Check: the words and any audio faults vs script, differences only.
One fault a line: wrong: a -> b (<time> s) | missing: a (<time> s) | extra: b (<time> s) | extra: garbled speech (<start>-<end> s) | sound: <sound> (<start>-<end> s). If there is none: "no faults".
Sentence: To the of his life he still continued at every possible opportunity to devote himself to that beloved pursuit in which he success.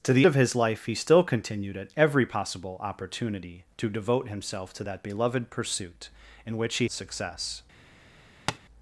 sound: tap (8.5-8.6 s)